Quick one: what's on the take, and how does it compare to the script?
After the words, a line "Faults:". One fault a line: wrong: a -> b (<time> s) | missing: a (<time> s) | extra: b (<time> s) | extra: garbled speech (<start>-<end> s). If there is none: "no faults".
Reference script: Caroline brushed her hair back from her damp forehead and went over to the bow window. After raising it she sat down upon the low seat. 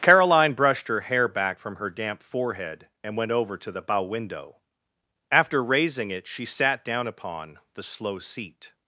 Caroline brushed her hair back from her damp forehead and went over to the bow window. After raising it she sat down upon the slow seat.
Faults:
wrong: low -> slow (7.8 s)